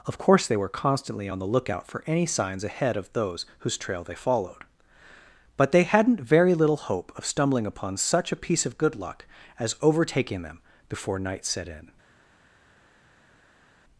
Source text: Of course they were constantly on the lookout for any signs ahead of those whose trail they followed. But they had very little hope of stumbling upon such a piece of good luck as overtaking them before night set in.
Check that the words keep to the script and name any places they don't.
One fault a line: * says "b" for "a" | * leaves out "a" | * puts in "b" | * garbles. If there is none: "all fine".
* says "hadn't" for "had"